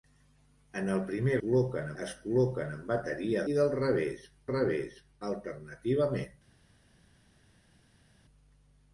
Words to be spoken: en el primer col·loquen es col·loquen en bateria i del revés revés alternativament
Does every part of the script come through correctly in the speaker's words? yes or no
yes